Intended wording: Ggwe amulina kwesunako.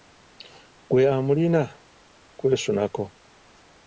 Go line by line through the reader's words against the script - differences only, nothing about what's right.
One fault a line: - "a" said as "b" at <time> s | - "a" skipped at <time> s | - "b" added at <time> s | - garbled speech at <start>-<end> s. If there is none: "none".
none